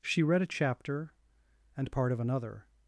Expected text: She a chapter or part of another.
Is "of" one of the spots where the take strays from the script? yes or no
no